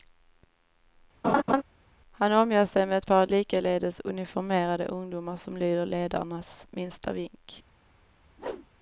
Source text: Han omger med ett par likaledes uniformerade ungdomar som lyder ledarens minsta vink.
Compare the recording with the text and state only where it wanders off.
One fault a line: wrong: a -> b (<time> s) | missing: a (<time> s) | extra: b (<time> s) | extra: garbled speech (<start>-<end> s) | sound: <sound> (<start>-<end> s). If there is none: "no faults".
sound: laugh (1.2-1.6 s)
extra: sig (2.6 s)
sound: whoosh (8.4-8.7 s)